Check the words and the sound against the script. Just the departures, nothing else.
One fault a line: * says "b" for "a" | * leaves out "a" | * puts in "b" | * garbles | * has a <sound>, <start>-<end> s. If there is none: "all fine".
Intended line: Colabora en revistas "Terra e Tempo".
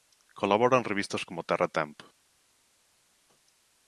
* puts in "como"